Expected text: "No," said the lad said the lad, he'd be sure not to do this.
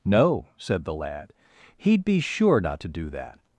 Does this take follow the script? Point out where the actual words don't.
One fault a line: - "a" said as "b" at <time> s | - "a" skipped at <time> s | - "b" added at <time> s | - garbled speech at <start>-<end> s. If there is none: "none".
- "said the lad" skipped at 1.3 s
- "this" said as "that" at 3.1 s